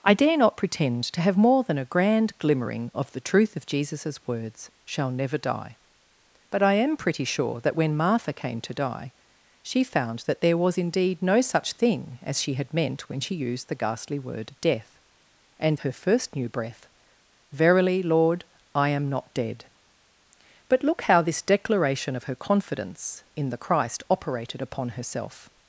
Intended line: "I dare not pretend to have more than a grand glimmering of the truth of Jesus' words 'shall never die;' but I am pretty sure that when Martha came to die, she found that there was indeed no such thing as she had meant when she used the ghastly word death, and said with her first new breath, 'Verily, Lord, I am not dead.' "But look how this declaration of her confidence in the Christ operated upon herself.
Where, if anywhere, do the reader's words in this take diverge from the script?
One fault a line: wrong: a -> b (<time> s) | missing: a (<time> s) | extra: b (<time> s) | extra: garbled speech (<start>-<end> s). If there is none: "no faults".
missing: said with (15.8 s)